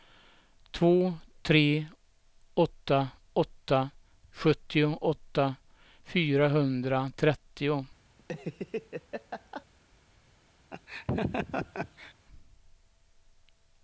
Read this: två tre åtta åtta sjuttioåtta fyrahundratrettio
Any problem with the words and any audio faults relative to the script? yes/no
yes